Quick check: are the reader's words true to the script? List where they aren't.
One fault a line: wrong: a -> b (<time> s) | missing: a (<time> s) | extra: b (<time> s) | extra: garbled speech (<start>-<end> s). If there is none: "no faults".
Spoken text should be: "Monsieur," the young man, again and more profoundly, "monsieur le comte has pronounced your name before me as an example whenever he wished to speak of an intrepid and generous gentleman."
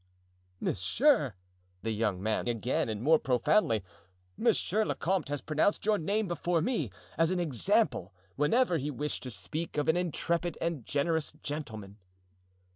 no faults